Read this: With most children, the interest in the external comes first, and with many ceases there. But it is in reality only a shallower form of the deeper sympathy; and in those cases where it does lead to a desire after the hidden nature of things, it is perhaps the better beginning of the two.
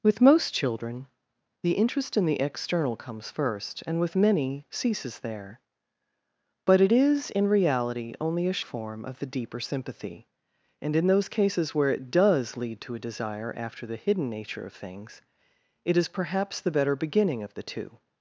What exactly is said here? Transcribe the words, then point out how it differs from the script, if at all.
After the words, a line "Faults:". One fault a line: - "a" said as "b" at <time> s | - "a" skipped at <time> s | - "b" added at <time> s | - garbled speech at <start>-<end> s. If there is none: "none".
With most children, the interest in the external comes first, and with many ceases there. But it is in reality only a form of the deeper sympathy; and in those cases where it does lead to a desire after the hidden nature of things, it is perhaps the better beginning of the two.
Faults:
- "shallower" skipped at 8.6 s